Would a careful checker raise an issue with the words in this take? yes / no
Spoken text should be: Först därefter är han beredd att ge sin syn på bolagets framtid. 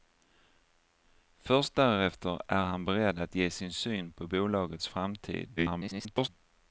yes